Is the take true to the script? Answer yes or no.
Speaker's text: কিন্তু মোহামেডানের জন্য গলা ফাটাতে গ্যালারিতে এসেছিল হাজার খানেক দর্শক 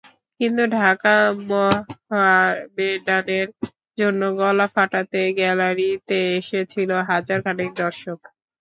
no